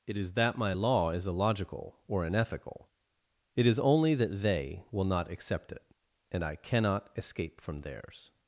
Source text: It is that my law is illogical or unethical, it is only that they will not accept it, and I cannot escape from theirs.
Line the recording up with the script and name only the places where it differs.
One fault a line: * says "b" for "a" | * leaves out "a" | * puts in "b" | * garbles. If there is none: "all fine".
all fine